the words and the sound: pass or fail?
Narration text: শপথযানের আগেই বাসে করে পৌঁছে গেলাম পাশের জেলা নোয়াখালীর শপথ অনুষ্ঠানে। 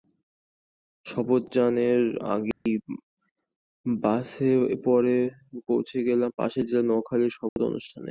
fail